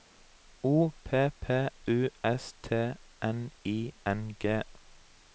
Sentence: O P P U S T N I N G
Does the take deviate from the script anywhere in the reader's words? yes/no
no